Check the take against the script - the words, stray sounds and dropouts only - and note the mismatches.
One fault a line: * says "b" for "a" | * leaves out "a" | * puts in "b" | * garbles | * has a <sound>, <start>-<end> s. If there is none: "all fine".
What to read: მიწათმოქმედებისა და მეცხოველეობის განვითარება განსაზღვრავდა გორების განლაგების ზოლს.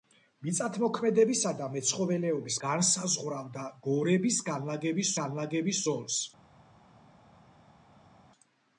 * leaves out "განვითარება"
* puts in "განლაგების"